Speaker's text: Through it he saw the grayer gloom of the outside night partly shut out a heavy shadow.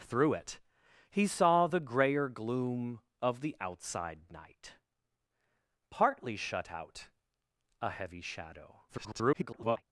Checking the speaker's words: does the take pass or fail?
fail